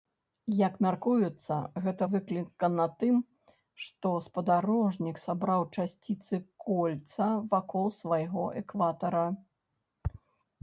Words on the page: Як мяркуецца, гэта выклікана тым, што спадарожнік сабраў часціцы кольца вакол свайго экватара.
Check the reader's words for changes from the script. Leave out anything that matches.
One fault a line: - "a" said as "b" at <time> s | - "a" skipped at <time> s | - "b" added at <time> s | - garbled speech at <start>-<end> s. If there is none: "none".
none